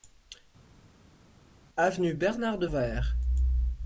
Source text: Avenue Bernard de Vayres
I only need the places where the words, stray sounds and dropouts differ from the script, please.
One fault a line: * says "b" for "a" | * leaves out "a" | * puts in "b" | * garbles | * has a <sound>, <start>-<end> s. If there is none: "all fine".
all fine